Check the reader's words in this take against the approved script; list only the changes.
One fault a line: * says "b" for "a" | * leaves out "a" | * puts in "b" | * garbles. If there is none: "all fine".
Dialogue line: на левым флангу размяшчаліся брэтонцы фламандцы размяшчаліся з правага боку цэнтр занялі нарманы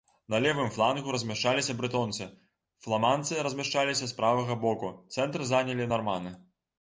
all fine